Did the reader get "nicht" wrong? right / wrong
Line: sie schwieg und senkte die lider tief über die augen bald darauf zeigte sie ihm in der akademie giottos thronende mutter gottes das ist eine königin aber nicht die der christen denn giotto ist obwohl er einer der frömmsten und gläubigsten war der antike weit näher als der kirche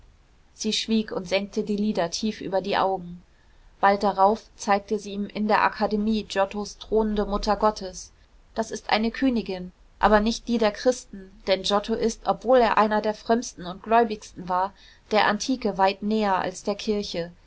right